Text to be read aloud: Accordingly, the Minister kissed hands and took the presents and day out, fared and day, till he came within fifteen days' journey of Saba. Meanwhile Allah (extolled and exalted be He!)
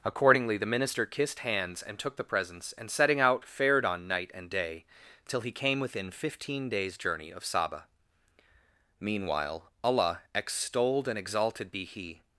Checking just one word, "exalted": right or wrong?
right